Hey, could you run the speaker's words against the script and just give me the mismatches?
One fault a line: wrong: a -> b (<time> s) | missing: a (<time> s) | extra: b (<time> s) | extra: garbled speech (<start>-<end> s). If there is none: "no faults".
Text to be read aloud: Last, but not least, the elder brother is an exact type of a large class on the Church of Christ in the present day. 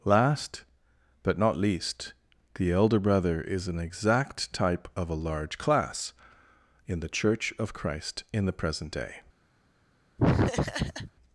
wrong: on -> in (6.9 s)